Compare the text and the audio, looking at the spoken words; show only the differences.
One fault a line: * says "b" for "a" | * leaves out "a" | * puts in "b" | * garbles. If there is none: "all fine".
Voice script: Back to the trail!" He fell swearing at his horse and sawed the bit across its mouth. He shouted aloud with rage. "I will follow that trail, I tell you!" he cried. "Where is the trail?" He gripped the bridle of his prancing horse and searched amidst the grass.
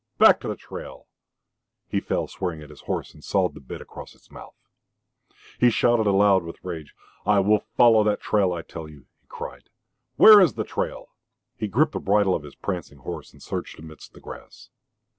all fine